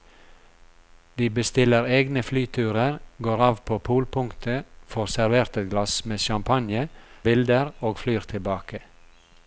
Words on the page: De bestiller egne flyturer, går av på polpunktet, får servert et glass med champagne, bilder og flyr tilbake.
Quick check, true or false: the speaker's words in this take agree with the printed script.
true